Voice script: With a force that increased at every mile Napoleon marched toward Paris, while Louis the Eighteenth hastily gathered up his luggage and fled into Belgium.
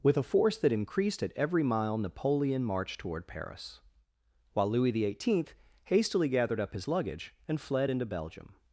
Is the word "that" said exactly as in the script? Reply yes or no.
yes